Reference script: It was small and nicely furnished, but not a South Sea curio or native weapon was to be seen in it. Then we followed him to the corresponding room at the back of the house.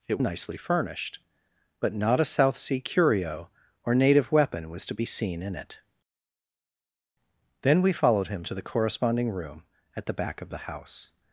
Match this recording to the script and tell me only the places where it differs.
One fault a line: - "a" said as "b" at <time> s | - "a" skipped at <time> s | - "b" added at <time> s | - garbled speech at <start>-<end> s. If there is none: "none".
- "was small and" skipped at 0.2 s